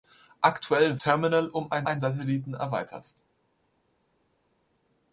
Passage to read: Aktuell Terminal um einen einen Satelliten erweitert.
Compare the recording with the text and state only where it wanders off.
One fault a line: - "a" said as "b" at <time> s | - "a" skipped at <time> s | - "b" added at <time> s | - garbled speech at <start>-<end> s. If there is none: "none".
none